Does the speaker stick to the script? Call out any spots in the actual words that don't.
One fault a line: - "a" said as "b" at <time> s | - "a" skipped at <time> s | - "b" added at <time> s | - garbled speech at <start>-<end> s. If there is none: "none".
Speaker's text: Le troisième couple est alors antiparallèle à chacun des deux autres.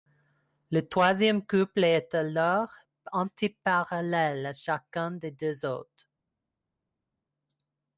none